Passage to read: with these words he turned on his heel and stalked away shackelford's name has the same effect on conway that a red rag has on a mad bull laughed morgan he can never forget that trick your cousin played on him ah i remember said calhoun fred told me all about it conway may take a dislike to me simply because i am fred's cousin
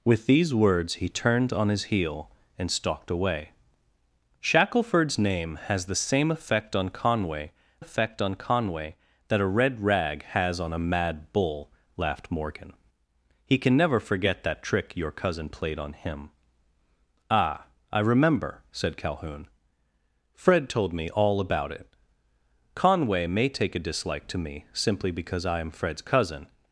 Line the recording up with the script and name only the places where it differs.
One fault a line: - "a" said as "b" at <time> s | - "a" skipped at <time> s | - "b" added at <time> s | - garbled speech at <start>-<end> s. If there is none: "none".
- "effect on conway" added at 7.8 s